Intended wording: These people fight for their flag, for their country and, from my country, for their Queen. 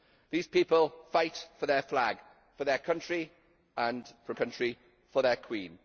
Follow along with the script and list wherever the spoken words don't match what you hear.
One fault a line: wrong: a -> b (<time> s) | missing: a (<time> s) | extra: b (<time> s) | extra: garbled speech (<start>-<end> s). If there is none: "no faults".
missing: my (4.4 s)